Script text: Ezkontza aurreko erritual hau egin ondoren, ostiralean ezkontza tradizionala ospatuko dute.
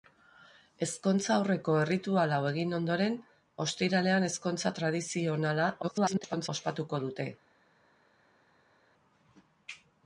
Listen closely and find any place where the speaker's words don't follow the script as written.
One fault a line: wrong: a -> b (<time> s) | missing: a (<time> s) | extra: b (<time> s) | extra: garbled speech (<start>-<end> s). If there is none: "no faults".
extra: garbled speech (5.8-6.5 s)